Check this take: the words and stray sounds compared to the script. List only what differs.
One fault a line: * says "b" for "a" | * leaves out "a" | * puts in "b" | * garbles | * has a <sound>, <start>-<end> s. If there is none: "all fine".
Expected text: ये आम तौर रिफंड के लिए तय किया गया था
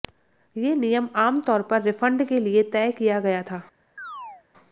* puts in "नियम"
* puts in "पर"
* has a chirp, 4.0-4.4 s